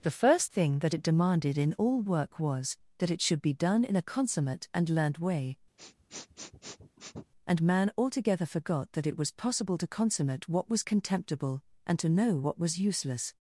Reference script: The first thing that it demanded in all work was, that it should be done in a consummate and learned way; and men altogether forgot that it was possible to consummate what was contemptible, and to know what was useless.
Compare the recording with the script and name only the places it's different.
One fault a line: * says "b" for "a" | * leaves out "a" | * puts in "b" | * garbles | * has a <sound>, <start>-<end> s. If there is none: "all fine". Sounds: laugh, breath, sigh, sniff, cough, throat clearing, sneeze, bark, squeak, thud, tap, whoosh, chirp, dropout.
* has a sniff, 5.8-7.3 s
* says "man" for "men"